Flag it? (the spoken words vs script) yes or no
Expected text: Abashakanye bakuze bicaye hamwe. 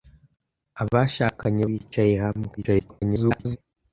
yes